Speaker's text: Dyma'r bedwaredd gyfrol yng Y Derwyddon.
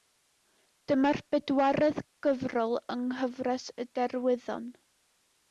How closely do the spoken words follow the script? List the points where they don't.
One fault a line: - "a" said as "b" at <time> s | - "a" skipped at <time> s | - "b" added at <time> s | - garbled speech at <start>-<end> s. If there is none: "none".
- "nghyfres" added at 3.1 s